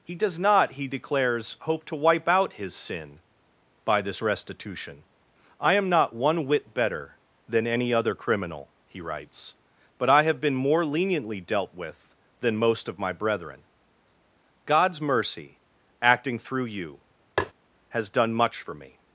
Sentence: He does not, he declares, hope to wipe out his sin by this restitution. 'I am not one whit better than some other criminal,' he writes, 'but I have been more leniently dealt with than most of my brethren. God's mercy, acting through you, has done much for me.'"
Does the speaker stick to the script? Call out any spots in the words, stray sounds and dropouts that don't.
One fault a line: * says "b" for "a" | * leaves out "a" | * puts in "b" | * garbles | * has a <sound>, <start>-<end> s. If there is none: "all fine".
* says "any" for "some"
* has a tap, 17.4-17.5 s